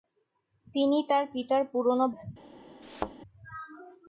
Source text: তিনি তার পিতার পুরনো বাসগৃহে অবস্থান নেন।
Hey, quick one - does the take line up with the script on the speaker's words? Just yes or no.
no